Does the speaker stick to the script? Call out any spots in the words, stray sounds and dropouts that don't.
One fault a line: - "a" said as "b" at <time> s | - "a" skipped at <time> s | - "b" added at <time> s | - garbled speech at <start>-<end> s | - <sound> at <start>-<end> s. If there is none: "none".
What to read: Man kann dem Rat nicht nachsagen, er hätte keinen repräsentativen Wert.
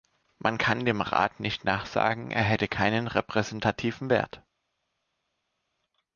none